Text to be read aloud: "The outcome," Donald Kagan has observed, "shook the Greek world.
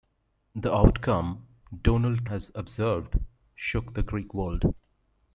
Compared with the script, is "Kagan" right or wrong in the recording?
wrong